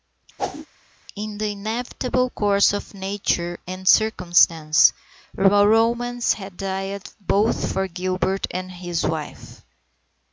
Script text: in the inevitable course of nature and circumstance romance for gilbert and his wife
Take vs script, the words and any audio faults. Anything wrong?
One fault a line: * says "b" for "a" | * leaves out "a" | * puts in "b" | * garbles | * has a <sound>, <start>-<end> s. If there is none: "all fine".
* has a whoosh, 0.4-0.7 s
* puts in "had died both"